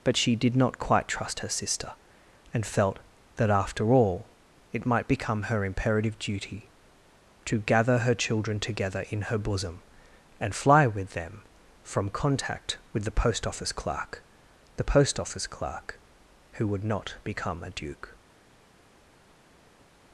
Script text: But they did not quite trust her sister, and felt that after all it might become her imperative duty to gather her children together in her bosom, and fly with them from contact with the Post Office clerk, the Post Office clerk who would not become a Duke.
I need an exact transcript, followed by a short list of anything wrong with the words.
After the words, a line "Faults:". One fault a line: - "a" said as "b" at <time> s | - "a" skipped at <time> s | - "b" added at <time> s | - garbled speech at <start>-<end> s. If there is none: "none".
But she did not quite trust her sister, and felt that after all it might become her imperative duty to gather her children together in her bosom, and fly with them from contact with the Post Office clerk, the Post Office clerk who would not become a Duke.
Faults:
- "they" said as "she" at 0.2 s